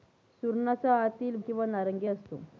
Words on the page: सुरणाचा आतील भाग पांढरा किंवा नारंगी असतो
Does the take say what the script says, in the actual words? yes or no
no